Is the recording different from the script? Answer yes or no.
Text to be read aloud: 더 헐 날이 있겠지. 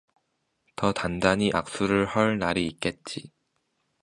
yes